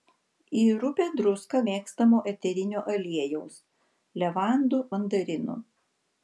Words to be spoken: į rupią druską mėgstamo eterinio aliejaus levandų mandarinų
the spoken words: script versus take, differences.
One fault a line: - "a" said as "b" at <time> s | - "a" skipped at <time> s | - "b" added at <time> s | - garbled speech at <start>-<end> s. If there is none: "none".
none